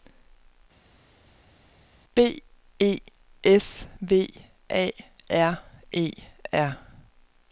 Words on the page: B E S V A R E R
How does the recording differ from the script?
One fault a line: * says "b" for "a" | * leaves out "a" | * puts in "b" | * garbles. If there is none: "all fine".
all fine